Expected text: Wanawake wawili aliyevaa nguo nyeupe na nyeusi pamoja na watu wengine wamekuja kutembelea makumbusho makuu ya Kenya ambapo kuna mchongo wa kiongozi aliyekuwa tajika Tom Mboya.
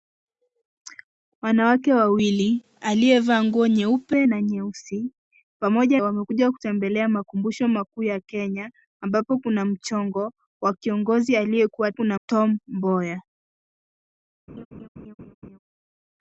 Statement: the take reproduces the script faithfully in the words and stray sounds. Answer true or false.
false